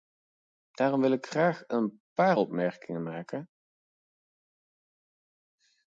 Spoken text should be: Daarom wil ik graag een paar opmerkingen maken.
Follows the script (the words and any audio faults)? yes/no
yes